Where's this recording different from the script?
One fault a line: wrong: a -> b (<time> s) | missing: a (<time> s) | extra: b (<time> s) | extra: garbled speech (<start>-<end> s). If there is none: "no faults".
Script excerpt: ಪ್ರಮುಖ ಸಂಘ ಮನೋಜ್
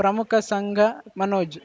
no faults